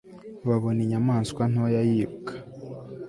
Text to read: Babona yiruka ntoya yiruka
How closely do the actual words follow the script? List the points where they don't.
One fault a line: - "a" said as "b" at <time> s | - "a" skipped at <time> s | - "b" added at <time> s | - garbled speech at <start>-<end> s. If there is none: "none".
- "yiruka" said as "inyamaswa" at 0.8 s